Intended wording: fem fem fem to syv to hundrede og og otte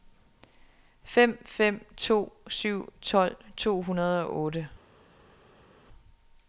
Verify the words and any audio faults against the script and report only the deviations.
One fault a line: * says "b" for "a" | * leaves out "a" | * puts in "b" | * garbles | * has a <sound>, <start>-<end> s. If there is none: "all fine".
* leaves out "fem"
* puts in "tolv"
* leaves out "og"